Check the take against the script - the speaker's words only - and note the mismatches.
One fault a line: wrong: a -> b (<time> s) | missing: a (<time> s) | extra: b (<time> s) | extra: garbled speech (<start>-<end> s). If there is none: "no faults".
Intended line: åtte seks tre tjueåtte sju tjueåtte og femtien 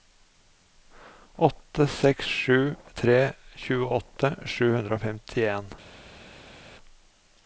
extra: sju (2.4 s)
wrong: tjueåtte -> hundre (4.8 s)